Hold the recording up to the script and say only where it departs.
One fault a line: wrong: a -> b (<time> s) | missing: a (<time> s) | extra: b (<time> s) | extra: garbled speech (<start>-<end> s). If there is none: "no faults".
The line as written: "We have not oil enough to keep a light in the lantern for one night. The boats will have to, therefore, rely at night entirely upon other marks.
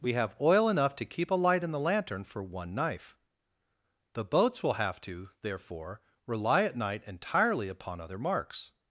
missing: not (0.3 s)
wrong: night -> knife (2.7 s)